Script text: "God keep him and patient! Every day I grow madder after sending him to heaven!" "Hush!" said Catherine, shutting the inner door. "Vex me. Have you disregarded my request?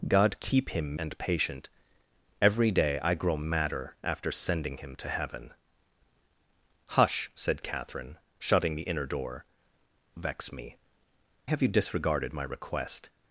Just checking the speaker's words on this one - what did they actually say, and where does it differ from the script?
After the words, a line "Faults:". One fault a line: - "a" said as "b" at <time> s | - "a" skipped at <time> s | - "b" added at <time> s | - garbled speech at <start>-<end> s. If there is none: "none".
"God keep him and patient! Every day I grow madder after sending him to heaven!" "Hush!" said Catherine, shutting the inner door. "Vex me. Have you disregarded my request?
Faults:
none